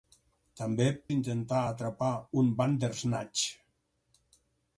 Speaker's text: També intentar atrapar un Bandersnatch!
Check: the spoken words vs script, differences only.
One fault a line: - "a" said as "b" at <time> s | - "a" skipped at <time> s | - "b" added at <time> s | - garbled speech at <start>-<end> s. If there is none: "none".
none